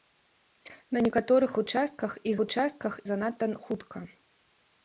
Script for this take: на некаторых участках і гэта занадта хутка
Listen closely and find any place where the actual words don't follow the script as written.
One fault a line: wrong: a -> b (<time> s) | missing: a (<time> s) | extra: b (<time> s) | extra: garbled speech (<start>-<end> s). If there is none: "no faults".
wrong: гэта -> участках (2.4 s)